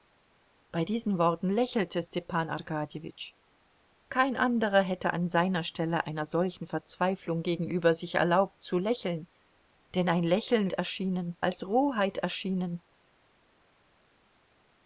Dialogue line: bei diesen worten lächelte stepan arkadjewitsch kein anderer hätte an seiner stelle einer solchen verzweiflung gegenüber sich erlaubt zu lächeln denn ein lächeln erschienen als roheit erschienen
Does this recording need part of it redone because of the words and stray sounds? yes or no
no